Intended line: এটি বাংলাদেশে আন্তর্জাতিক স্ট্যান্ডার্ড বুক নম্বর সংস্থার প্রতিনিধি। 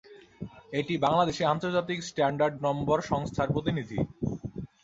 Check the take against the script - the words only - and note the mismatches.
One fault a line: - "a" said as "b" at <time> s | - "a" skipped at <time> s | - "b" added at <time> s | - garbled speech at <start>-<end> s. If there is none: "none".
- "বুক" skipped at 2.6 s